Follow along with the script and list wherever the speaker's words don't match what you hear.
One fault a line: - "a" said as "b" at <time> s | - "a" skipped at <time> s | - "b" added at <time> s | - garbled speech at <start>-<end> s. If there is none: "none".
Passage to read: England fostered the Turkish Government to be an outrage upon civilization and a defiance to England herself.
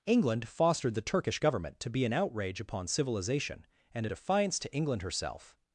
none